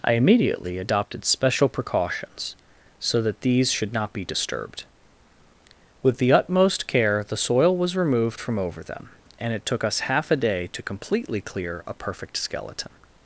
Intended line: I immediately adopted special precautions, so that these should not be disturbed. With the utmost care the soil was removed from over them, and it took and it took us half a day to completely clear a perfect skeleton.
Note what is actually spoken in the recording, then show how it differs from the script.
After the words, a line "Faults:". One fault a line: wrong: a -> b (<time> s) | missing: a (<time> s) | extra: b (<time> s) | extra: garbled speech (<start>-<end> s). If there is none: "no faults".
I immediately adopted special precautions, so that these should not be disturbed. With the utmost care the soil was removed from over them, and it took us half a day to completely clear a perfect skeleton.
Faults:
missing: and it took (9.8 s)